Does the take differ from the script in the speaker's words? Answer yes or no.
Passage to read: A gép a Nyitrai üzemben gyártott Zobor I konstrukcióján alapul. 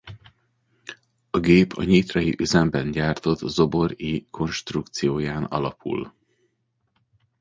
no